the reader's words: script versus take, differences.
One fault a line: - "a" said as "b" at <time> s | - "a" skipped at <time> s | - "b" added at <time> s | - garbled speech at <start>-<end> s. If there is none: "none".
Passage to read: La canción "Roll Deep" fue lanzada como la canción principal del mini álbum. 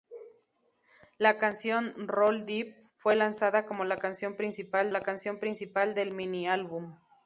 - "la canción principal" added at 4.9 s